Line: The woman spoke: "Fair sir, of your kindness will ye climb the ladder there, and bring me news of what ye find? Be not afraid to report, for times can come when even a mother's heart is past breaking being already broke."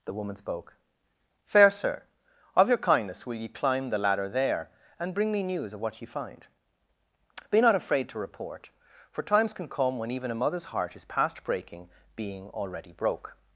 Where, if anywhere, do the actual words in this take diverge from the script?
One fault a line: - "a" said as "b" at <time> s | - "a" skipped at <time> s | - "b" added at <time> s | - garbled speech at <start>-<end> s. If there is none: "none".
none